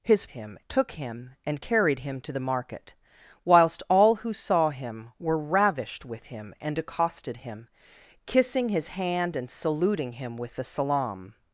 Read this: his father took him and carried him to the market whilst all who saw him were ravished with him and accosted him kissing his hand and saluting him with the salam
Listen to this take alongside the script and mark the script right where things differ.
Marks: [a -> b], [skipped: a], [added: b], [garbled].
his [father -> him] took him and carried him to the market whilst all who saw him were ravished with him and accosted him kissing his hand and saluting him with the salam